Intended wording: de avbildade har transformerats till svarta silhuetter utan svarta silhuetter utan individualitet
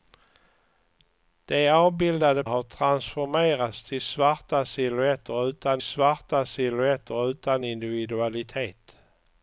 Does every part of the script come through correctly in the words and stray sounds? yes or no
yes